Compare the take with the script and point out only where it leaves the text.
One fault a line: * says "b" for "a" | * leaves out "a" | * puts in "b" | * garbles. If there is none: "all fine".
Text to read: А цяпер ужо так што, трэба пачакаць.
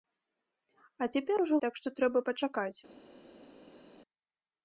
all fine